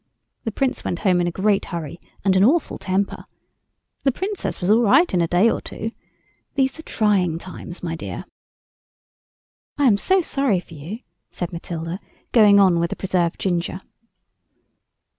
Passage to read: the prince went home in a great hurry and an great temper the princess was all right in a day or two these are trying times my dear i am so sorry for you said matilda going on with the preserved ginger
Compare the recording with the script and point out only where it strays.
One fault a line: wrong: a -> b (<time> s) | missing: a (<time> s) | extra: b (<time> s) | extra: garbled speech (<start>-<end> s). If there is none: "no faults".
wrong: great -> awful (2.4 s)